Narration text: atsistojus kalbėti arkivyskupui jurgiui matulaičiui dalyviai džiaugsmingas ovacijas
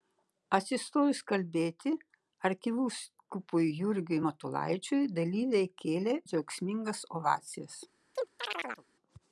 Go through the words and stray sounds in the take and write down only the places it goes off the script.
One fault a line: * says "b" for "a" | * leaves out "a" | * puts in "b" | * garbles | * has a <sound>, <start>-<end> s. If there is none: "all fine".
* puts in "kėlė"
* has a chirp, 8.2-8.9 s